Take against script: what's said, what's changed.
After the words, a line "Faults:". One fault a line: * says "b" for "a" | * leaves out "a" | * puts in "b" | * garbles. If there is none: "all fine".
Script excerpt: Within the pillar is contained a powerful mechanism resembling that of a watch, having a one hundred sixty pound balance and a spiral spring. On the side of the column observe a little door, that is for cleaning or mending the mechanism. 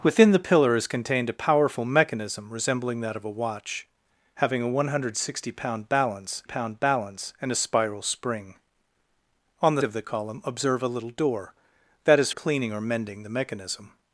Within the pillar is contained a powerful mechanism resembling that of a watch, having a one hundred sixty pound balance pound balance and a spiral spring. On the of the column observe a little door, that is cleaning or mending the mechanism.
Faults:
* puts in "pound balance"
* leaves out "side"
* leaves out "for"